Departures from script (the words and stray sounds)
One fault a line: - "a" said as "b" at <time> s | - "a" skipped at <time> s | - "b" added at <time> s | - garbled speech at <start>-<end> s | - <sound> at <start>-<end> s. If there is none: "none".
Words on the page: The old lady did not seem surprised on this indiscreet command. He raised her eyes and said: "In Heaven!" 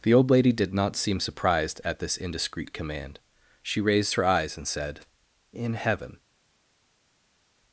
- "on" said as "at" at 1.8 s
- "He" said as "She" at 3.6 s